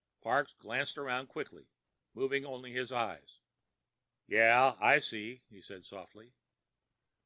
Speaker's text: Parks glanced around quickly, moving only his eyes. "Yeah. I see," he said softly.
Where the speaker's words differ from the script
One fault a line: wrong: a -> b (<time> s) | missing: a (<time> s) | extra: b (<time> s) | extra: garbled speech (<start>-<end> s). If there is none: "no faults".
no faults